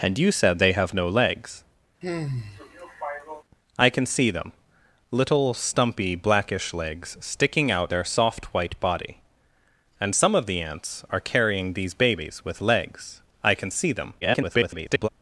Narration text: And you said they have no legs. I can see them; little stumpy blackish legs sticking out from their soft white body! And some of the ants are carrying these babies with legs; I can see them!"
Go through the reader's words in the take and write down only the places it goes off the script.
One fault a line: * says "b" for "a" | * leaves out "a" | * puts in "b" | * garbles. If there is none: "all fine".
* leaves out "from"
* garbles